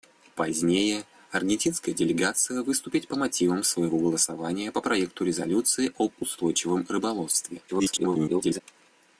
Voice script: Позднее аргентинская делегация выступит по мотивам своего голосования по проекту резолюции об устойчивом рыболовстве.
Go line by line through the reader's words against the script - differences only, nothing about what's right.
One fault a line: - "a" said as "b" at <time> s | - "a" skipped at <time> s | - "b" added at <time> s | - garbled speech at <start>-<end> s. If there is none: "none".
- garbled speech at 7.7-8.6 s